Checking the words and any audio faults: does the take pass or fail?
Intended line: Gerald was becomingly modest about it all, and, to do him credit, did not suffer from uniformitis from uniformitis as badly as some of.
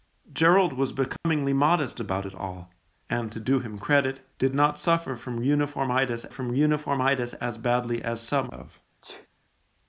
fail